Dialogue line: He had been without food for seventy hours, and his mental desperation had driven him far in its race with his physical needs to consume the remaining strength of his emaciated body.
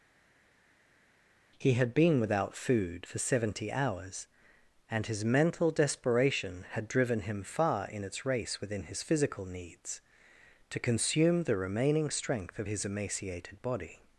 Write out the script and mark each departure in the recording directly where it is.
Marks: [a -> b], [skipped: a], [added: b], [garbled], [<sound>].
He had been without food for seventy hours, and his mental desperation had driven him far in its race [with -> within] his physical needs to consume the remaining strength of his emaciated body.